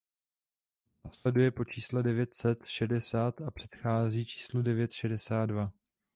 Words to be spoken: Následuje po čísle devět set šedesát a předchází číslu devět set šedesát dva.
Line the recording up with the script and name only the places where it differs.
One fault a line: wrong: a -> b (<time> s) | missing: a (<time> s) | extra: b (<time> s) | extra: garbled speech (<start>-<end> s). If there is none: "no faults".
missing: set (4.9 s)